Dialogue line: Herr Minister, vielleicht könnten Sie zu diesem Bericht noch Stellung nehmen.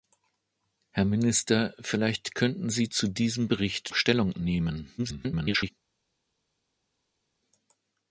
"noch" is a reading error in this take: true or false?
true